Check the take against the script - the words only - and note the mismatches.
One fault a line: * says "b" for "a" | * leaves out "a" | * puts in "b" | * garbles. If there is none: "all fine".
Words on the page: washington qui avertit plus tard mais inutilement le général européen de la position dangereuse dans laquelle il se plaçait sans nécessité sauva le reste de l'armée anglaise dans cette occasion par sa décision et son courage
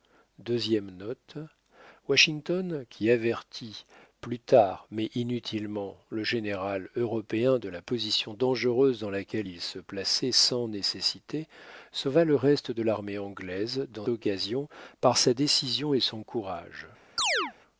* leaves out "cette"